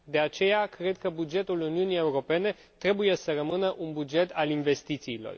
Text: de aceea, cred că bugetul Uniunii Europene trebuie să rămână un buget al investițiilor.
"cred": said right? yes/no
yes